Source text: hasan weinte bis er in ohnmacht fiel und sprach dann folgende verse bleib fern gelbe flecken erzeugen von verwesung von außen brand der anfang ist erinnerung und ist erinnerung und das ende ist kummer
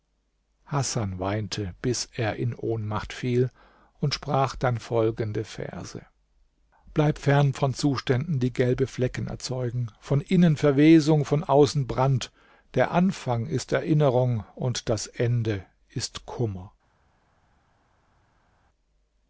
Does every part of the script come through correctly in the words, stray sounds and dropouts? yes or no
no